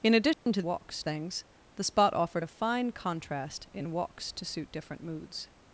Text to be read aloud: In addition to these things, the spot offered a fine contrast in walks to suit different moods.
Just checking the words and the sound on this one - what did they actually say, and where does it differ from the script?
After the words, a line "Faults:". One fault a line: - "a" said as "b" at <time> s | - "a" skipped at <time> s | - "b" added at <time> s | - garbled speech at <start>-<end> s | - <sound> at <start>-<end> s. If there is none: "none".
In addition to walks things, the spot offered a fine contrast in walks to suit different moods.
Faults:
- dropout at 0.3-0.5 s
- "these" said as "walks" at 0.6 s